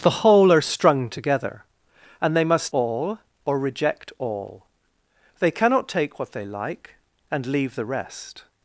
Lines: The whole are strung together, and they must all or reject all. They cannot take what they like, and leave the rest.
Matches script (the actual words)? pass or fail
pass